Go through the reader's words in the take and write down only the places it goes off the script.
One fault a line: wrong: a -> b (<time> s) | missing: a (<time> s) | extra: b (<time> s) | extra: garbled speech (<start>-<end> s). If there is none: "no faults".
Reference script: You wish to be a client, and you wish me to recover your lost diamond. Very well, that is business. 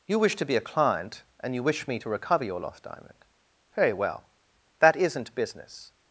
wrong: is -> isn't (5.0 s)